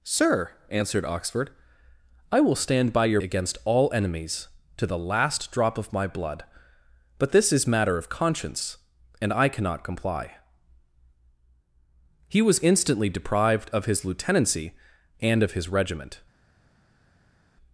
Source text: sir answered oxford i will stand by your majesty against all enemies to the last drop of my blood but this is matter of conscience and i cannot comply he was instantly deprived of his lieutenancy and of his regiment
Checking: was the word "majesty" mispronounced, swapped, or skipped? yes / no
yes